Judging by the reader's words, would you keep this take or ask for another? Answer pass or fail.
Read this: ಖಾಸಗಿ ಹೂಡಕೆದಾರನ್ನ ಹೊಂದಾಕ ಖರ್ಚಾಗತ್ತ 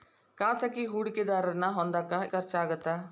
pass